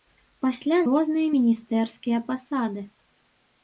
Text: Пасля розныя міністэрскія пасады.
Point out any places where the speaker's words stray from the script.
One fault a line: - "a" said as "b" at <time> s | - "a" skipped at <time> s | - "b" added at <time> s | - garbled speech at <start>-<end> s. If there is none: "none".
none